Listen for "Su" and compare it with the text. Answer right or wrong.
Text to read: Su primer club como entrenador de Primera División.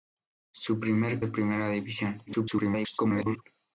right